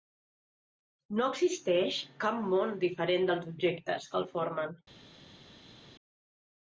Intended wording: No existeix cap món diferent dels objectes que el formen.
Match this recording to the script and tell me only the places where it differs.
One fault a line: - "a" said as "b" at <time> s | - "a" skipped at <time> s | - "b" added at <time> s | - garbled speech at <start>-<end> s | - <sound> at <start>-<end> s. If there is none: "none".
none